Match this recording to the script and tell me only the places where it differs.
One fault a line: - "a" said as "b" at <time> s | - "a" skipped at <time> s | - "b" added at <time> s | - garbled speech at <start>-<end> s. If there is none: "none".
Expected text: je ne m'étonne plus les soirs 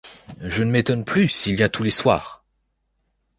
- "s'il vient tous" added at 1.3 s